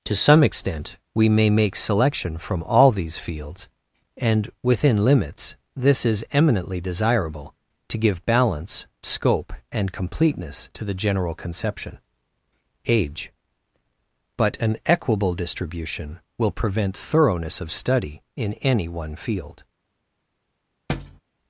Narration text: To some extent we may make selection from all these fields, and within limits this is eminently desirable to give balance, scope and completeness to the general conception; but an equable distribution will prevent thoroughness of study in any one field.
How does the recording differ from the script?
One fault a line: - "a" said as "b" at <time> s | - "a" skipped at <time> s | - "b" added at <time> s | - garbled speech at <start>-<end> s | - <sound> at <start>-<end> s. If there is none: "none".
- "age" added at 12.9 s
- thud at 20.9-21.2 s